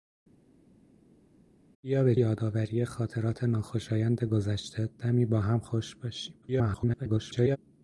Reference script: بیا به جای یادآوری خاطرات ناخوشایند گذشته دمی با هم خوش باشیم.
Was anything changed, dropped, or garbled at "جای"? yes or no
yes